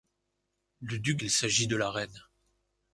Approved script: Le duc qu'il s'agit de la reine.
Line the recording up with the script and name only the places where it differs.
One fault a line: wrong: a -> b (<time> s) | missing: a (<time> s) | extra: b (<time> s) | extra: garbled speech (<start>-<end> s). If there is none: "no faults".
no faults